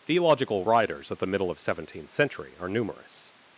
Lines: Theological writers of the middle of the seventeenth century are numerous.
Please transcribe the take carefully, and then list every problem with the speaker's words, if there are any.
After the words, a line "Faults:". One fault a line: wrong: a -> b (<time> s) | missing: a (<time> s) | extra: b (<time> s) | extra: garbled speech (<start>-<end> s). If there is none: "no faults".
Theological writers of the middle of seventeenth century are numerous.
Faults:
missing: the (1.6 s)